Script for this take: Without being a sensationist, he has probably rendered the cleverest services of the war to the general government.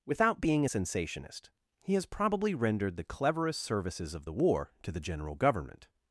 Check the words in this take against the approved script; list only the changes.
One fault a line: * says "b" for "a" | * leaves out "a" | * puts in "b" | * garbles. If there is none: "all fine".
all fine